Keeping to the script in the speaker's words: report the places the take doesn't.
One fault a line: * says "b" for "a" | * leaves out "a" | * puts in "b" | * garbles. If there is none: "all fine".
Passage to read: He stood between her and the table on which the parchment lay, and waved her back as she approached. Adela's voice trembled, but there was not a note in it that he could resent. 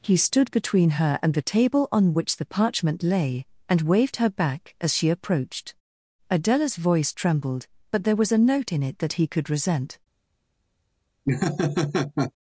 * leaves out "not"